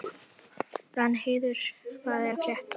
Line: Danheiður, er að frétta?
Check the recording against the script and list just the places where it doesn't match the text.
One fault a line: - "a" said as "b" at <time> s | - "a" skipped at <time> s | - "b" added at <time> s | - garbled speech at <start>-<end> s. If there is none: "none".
- "hvað" added at 2.0 s